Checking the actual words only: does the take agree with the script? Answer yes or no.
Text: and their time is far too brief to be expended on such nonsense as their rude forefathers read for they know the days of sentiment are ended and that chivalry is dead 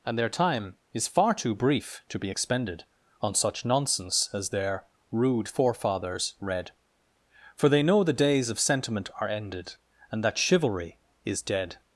yes